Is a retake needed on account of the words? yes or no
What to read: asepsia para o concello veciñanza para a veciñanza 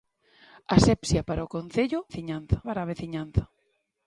no